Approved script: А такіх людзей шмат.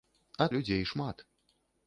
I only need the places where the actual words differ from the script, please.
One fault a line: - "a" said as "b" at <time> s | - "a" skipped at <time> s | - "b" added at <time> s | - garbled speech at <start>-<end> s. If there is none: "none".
- "такіх" skipped at 0.5 s